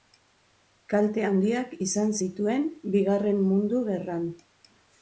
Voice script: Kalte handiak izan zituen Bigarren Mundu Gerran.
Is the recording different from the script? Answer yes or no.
no